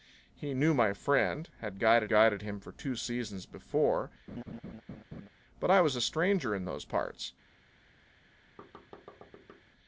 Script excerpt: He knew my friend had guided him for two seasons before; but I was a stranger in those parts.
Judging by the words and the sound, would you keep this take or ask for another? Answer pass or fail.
fail